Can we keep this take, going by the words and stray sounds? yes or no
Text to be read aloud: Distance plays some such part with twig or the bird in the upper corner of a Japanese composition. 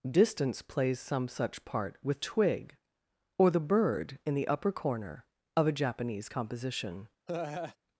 no